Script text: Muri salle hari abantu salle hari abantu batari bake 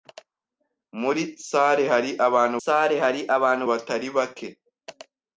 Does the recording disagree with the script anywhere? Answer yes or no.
no